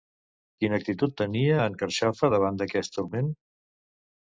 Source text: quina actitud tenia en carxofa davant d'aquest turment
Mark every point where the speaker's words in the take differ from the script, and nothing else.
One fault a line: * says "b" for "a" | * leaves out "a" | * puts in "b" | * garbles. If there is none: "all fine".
all fine